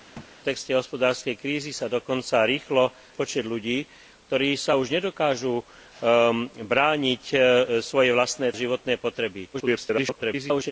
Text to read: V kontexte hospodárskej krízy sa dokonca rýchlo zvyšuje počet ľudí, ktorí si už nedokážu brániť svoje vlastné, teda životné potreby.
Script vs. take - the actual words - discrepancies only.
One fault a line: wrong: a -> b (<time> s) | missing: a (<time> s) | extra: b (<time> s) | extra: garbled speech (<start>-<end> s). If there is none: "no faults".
missing: zvyšuje (2.9 s)
missing: teda (8.6 s)
extra: garbled speech (9.5-10.7 s)